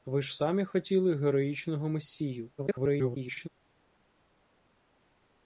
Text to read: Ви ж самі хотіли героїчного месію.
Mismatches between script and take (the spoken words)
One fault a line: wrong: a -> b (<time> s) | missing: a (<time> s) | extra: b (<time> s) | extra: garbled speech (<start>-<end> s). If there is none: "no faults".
extra: garbled speech (2.6-3.5 s)